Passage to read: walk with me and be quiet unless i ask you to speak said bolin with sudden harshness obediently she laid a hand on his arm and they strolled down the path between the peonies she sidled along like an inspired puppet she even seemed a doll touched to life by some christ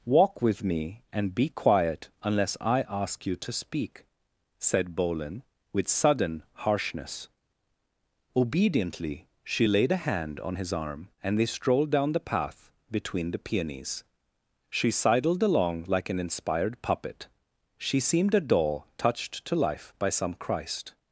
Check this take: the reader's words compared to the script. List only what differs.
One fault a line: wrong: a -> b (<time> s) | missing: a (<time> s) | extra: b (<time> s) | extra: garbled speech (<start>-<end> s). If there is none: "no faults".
missing: even (18.0 s)